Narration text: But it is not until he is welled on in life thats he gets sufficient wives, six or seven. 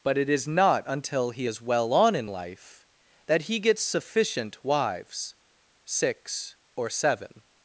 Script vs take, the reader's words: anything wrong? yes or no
yes